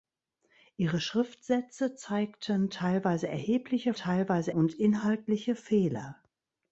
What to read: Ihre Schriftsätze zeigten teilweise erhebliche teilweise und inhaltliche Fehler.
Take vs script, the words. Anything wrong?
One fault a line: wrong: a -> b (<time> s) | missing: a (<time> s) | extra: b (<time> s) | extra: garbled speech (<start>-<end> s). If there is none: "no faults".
no faults